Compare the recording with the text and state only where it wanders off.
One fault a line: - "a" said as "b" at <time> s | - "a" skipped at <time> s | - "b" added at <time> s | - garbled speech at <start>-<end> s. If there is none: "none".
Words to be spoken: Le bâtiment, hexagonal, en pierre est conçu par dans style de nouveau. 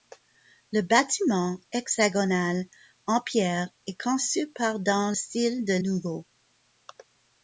none